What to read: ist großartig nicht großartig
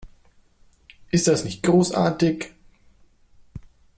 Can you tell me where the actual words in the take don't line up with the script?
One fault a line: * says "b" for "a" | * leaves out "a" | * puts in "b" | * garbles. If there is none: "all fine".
* says "das" for "großartig"